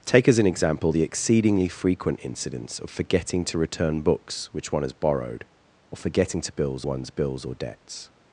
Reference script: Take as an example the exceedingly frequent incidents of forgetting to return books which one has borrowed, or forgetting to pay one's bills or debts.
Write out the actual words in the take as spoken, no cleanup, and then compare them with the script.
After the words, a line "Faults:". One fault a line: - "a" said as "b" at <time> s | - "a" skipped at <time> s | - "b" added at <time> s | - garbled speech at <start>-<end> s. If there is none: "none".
Take as an example the exceedingly frequent incidents of forgetting to return books which one has borrowed, or forgetting to bills one's bills or debts.
Faults:
- "pay" said as "bills" at 6.5 s